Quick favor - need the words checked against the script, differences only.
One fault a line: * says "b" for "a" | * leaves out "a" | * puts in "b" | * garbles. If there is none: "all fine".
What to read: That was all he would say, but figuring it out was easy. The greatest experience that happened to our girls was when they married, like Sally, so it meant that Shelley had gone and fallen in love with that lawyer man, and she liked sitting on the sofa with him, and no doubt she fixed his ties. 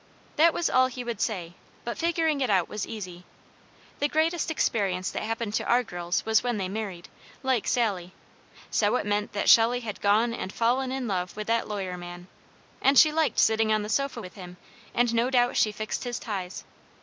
all fine